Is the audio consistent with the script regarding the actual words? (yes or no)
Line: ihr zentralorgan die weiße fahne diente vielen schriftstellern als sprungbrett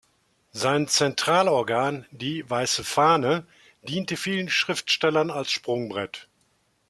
no